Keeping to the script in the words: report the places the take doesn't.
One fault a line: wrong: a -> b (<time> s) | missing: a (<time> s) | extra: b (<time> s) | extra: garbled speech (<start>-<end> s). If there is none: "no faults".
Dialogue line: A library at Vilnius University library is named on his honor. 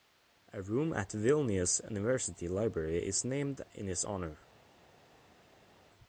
wrong: library -> room (0.6 s)
wrong: on -> in (3.7 s)